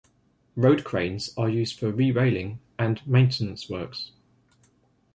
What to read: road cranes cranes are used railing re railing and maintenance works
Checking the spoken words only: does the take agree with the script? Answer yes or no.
no